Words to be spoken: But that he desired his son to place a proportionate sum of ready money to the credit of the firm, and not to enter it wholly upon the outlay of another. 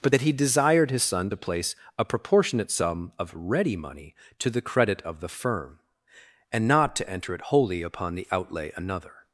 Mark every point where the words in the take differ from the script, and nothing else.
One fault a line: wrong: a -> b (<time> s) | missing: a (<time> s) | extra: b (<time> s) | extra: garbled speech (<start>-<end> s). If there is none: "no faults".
missing: of (8.7 s)